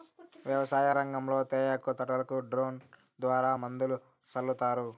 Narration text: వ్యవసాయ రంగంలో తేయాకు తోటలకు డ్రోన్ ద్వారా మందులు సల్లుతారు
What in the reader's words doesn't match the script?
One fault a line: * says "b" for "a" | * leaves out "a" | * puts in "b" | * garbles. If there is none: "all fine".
all fine